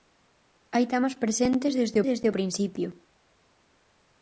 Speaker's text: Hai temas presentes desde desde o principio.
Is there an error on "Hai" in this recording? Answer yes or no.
no